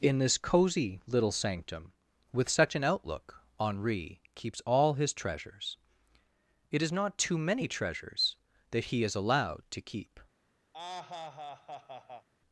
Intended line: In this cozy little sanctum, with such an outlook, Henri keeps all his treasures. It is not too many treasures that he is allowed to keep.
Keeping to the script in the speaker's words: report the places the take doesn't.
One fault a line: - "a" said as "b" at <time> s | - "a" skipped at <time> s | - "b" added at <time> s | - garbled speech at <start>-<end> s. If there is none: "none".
none